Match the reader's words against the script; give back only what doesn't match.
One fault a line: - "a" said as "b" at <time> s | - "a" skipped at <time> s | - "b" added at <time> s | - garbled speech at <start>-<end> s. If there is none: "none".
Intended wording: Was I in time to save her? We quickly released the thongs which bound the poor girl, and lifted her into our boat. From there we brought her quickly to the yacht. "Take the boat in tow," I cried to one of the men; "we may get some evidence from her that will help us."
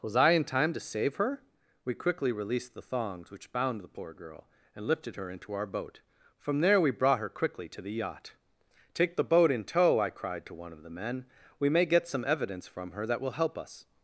none